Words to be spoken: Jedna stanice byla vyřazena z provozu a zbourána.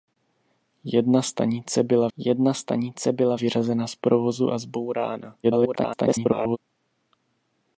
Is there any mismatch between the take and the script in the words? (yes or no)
yes